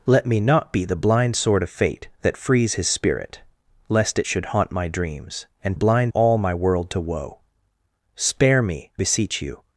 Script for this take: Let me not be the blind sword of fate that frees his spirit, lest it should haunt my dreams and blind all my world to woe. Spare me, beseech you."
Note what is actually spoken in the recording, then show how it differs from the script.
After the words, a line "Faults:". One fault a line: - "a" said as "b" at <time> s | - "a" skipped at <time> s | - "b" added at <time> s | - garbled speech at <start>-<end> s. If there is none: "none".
Let me not be the blind sword of fate that frees his spirit, lest it should haunt my dreams and blind all my world to woe. Spare me, beseech you."
Faults:
none